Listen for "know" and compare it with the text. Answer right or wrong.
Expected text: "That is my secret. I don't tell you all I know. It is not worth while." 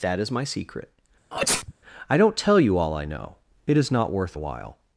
right